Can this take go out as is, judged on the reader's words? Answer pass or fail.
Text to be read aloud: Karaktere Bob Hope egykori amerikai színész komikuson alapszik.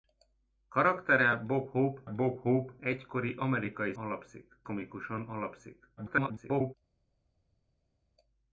fail